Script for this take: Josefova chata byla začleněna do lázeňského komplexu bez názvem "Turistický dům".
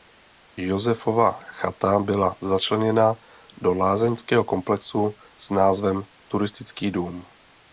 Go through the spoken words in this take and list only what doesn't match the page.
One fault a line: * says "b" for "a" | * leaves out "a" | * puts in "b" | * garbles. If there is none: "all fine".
* says "s" for "bez"